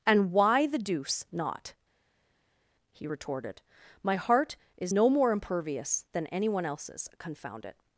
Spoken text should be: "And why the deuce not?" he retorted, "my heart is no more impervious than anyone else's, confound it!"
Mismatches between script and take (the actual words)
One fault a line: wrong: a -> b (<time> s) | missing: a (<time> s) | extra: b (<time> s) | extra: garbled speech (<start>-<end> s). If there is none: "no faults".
no faults